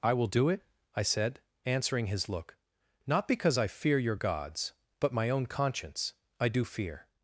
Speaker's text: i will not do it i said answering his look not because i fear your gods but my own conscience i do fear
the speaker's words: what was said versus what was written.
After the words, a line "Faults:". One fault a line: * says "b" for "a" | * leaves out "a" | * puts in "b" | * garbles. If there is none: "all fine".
i will do it i said answering his look not because i fear your gods but my own conscience i do fear
Faults:
* leaves out "not"